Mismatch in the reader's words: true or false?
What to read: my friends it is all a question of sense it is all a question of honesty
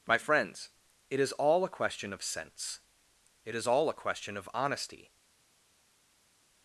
false